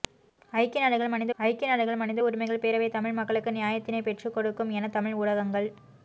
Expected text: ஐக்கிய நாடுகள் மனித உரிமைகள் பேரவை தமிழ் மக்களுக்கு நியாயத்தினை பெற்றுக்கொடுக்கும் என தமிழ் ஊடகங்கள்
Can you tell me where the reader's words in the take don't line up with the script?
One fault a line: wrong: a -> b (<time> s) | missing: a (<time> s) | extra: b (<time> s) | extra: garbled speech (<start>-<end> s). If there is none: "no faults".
extra: ஐக்கிய நாடுகள் மனித (1.4 s)